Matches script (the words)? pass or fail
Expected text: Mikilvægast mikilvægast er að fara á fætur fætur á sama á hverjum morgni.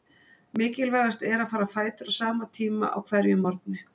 fail